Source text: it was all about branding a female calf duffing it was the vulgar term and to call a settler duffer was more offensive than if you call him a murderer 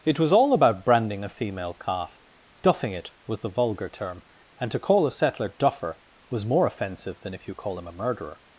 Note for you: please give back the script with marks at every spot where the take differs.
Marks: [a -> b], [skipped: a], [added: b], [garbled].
it was all about branding a female calf duffing it was the vulgar term and to call a settler duffer was more offensive than if you call him a murderer